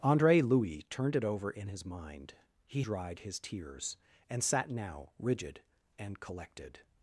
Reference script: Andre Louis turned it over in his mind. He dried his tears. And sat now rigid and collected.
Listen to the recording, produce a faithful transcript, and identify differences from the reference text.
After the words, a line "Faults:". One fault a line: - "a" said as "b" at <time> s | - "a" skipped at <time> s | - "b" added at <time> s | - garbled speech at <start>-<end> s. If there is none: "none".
Andre Louis turned it over in his mind. He dried his tears. And sat now rigid and collected.
Faults:
none